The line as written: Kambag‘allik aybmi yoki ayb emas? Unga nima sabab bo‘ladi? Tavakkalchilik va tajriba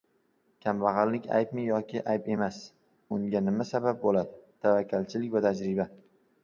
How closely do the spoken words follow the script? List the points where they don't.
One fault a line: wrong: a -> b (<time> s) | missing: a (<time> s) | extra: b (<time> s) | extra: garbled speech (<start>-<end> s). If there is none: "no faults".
no faults